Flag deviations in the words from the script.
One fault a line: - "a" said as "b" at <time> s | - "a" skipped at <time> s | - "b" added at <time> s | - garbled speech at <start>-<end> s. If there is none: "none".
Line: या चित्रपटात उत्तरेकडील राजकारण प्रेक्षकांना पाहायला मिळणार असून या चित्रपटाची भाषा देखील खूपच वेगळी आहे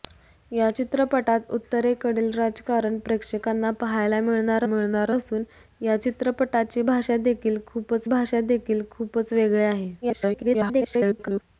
- "मिळणार" added at 4.6 s
- "भाषा देखील खूपच" added at 8.1 s
- garbled speech at 10.0-11.4 s